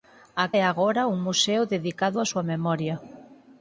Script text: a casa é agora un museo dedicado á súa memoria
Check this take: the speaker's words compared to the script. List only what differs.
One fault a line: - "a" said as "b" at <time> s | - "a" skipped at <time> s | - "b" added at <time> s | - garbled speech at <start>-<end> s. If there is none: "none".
- "casa" skipped at 0.5 s